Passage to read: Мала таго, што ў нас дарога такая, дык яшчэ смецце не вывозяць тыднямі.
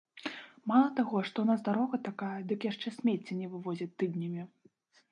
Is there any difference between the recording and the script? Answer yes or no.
no